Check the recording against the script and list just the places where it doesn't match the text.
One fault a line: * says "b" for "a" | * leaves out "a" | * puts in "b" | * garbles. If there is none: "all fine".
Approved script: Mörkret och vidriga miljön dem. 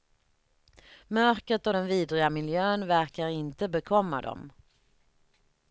* puts in "den"
* puts in "verkar inte bekomma"